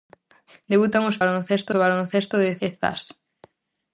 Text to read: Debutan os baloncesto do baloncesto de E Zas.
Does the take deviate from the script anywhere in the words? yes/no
no